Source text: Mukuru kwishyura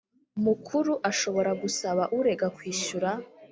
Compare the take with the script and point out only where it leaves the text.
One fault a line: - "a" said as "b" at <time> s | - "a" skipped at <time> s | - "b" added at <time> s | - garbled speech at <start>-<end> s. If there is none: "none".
- "ashobora gusaba urega" added at 1.1 s